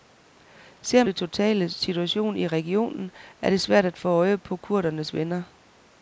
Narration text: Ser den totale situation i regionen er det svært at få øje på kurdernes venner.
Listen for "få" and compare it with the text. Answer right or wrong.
right